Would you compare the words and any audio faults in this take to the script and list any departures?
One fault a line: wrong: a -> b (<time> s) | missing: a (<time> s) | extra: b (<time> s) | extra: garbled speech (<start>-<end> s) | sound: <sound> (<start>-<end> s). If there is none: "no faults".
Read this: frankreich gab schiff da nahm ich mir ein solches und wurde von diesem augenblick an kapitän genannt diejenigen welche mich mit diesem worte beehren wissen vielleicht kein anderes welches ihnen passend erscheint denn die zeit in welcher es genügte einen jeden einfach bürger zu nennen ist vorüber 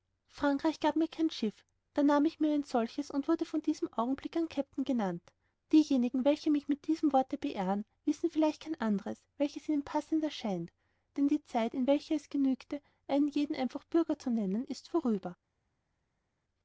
extra: mir kein (0.9 s)